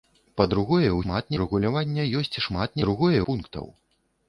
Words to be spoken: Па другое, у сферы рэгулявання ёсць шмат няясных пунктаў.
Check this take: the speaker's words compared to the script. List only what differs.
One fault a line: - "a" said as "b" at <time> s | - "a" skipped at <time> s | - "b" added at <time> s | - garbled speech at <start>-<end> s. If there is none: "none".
- "сферы" said as "шмат" at 1.0 s
- "няясных" said as "другое" at 2.8 s